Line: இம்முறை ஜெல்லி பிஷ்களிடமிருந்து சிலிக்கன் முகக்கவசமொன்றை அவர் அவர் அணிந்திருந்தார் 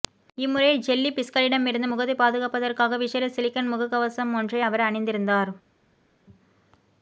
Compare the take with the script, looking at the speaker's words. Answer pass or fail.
fail